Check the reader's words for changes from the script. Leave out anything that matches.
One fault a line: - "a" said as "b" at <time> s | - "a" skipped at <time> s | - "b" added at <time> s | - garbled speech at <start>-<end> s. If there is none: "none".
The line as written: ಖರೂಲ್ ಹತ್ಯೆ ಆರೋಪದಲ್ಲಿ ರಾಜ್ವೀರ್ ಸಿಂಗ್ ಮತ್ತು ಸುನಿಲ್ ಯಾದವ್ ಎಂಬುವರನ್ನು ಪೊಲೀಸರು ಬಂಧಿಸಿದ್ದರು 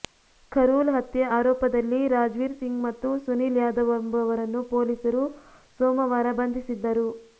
- "ಸೋಮವಾರ" added at 5.8 s